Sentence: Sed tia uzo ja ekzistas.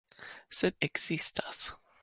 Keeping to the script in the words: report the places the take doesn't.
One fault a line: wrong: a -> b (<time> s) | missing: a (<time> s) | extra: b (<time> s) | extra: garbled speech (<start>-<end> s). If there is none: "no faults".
missing: tia uzo ja (0.8 s)